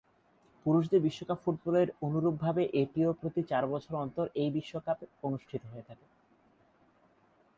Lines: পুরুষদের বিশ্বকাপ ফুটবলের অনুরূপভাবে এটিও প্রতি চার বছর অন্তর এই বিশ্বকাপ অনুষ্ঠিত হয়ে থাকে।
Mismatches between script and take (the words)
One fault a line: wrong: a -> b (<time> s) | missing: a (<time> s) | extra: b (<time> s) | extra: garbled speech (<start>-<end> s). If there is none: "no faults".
no faults